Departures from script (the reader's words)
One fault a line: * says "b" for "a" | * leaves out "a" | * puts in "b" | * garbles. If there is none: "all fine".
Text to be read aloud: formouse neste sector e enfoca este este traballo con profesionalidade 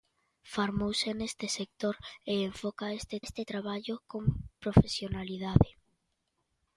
all fine